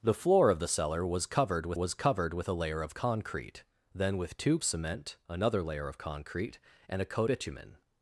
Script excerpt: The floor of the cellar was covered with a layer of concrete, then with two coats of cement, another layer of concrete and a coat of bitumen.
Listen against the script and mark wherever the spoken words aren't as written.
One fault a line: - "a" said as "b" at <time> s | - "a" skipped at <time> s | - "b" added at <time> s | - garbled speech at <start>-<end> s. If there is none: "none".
- "was covered with" added at 1.7 s
- "coats of" skipped at 4.6 s
- "of" skipped at 7.3 s